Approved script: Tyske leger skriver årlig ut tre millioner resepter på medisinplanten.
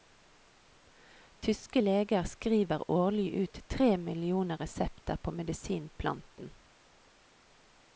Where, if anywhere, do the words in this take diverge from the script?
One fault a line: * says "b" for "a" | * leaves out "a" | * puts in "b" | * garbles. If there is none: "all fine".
all fine